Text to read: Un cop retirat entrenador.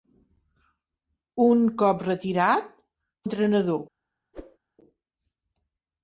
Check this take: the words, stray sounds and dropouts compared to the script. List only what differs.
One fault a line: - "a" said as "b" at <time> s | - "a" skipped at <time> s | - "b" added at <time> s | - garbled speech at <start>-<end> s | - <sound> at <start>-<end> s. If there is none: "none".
- whoosh at 4.3-4.6 s